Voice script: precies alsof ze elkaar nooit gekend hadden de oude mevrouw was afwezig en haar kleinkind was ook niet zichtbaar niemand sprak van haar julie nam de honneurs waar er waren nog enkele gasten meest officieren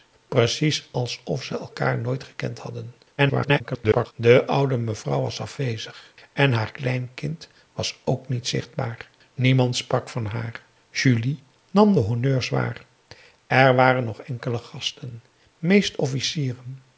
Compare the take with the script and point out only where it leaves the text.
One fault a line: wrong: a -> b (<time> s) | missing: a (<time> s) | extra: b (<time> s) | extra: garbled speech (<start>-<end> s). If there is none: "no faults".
extra: garbled speech (3.2-4.1 s)